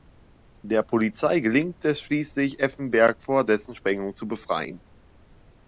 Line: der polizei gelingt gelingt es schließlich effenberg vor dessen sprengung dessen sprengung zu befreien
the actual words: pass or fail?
fail